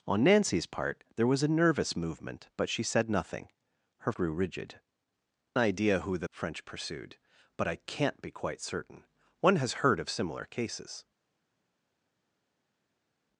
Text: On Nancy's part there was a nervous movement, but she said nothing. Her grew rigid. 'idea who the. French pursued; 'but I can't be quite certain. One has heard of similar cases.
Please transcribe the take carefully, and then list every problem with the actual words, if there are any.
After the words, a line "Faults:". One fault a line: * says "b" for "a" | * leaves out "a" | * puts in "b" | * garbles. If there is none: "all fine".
On Nancy's part there was a nervous movement, but she said nothing. Her grew rigid. 'idea who the. French pursued; 'but I can't be quite certain. One has heard of similar cases.
Faults:
all fine